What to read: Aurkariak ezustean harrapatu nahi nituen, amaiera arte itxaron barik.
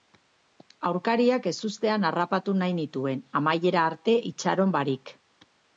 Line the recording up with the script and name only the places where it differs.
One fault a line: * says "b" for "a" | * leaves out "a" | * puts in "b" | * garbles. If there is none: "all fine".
all fine